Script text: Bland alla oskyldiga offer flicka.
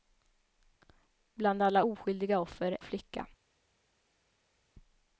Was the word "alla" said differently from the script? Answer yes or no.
no